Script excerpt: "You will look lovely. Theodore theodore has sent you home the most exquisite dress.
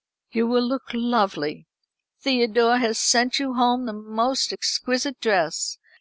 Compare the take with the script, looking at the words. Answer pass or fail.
fail